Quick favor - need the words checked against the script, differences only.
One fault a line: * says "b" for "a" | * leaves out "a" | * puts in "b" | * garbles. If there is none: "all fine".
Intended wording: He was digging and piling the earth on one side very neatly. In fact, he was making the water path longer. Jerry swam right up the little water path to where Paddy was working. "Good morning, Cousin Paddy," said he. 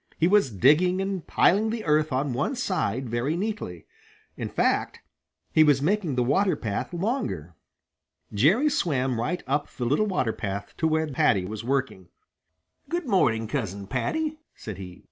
all fine